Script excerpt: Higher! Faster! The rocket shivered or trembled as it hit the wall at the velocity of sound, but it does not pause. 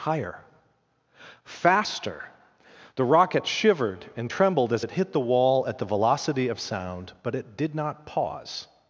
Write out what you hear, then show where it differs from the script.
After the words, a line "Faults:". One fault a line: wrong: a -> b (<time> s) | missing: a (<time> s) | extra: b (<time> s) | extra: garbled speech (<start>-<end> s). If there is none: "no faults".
Higher! Faster! The rocket shivered and trembled as it hit the wall at the velocity of sound, but it did not pause.
Faults:
wrong: or -> and (4.2 s)
wrong: does -> did (7.6 s)